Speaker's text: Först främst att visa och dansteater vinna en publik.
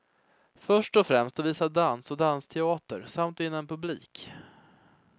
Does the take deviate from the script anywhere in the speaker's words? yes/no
yes